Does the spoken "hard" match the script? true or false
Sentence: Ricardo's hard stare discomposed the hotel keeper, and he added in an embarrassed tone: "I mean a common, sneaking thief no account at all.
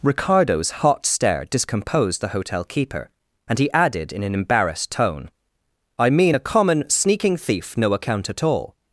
false